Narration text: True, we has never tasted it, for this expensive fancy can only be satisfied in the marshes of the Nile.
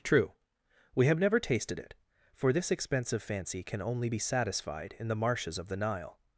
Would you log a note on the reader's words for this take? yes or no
yes